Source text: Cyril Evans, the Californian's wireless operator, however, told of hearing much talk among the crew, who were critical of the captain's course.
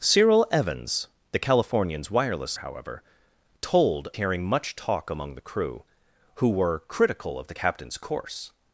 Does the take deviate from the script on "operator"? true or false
true